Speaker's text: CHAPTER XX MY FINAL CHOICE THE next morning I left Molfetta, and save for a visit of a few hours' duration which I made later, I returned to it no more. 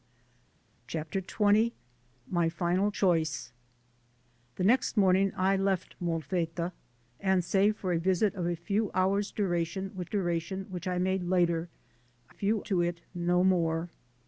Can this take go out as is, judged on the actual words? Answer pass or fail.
fail